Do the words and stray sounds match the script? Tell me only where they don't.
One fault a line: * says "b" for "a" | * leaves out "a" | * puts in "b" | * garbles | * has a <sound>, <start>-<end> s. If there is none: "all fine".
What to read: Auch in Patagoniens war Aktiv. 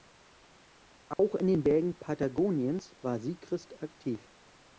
* has a dropout, 1.1-1.2 s
* puts in "den Bergen"
* puts in "Siegrist"